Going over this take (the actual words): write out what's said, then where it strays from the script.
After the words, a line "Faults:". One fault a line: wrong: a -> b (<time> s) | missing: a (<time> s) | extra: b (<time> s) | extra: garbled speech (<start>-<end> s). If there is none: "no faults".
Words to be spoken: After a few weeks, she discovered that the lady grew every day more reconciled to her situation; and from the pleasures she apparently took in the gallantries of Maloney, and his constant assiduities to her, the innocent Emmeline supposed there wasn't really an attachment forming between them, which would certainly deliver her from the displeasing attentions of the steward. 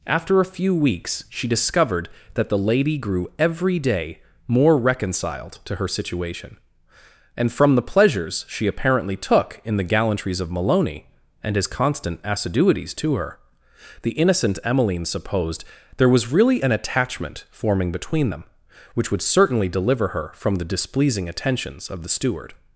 After a few weeks, she discovered that the lady grew every day more reconciled to her situation; and from the pleasures she apparently took in the gallantries of Maloney, and his constant assiduities to her, the innocent Emmeline supposed there was really an attachment forming between them, which would certainly deliver her from the displeasing attentions of the steward.
Faults:
wrong: wasn't -> was (16.1 s)